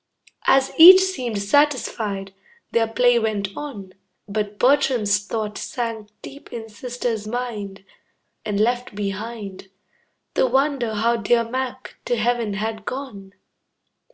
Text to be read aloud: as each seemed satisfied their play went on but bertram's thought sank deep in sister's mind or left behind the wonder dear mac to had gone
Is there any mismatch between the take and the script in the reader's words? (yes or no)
yes